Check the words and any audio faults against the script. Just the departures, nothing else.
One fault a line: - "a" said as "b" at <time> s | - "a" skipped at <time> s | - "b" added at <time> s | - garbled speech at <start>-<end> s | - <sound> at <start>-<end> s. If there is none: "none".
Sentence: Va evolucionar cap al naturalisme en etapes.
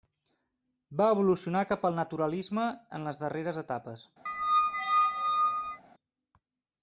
- "les darreres" added at 3.1 s
- squeak at 4.3-5.8 s